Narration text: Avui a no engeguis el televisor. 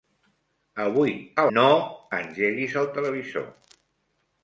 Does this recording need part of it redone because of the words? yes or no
no